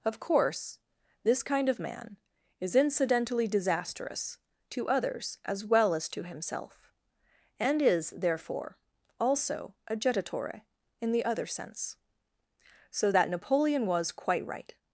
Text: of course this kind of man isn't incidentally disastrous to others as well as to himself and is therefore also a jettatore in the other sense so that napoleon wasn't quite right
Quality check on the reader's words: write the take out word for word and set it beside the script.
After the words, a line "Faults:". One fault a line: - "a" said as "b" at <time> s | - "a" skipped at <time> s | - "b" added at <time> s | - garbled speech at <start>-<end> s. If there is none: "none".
of course this kind of man is incidentally disastrous to others as well as to himself and is therefore also a jettatore in the other sense so that napoleon was quite right
Faults:
- "isn't" said as "is" at 2.6 s
- "wasn't" said as "was" at 13.9 s